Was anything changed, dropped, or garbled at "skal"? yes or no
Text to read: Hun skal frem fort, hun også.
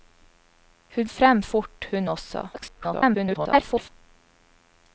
yes